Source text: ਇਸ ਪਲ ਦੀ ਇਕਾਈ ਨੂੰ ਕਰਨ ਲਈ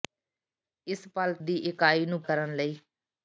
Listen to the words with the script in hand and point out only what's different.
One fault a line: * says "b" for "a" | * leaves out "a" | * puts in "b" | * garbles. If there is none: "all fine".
all fine